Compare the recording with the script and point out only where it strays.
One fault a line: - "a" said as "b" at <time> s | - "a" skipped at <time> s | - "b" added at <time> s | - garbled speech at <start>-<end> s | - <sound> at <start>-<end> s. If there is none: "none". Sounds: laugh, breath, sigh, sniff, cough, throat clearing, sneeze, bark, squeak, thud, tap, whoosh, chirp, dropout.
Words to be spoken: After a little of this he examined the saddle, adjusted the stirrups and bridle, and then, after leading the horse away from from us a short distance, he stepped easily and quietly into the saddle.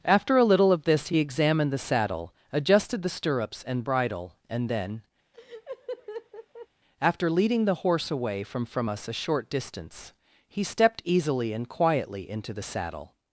- laugh at 5.3-6.7 s